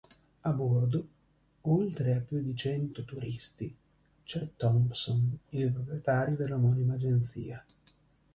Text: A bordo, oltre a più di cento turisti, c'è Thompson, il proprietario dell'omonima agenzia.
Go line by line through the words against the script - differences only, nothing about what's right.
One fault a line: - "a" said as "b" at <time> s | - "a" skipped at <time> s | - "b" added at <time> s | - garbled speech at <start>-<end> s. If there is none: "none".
none